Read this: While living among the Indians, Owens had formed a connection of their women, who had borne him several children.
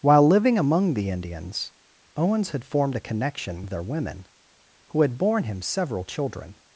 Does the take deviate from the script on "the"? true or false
false